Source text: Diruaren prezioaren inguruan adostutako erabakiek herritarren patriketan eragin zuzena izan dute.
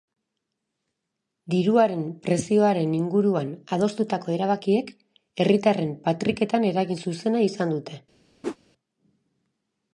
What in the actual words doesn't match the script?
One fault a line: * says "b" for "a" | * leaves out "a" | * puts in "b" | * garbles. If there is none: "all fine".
all fine